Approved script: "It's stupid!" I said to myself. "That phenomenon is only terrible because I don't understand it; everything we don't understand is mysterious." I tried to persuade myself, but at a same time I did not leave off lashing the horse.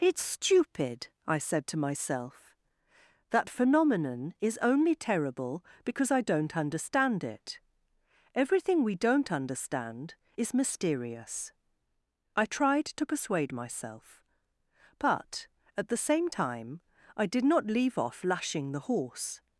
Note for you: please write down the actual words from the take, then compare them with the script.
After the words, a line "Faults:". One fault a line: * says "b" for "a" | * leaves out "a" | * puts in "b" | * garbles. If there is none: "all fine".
"It's stupid!" I said to myself. "That phenomenon is only terrible because I don't understand it; everything we don't understand is mysterious." I tried to persuade myself, but at the same time I did not leave off lashing the horse.
Faults:
* says "the" for "a"